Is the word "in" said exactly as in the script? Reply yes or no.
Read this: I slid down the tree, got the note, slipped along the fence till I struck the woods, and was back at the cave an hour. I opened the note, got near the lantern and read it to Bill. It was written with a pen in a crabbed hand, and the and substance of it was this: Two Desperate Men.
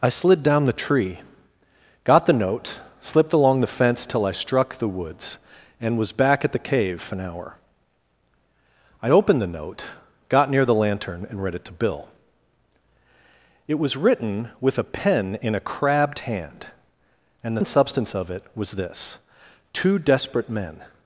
yes